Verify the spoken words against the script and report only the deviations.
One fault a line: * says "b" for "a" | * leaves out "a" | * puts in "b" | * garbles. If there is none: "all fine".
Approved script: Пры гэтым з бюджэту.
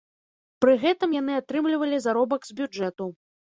* puts in "яны атрымлівалі заробак"